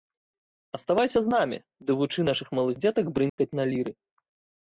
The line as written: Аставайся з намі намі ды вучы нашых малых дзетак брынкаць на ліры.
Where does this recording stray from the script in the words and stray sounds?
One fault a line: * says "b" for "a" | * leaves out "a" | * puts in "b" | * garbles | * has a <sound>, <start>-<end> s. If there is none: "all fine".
* leaves out "намі"
* has a dropout, 3.3-3.4 s